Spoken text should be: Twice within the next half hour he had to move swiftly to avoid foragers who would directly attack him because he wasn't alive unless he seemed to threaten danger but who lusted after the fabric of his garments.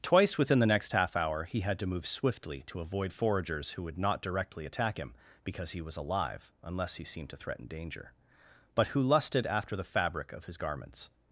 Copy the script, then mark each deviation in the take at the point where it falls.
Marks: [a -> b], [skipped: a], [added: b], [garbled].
Twice within the next half hour he had to move swiftly to avoid foragers who would [added: not] directly attack him because he [wasn't -> was] alive unless he seemed to threaten danger but who lusted after the fabric of his garments.